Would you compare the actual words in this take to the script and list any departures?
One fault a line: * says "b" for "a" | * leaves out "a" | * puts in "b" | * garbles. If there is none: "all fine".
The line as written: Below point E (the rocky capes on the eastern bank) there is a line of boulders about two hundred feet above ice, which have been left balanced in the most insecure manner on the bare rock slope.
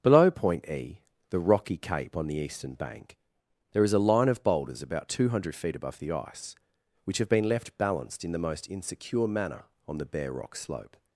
* says "cape" for "capes"
* puts in "the"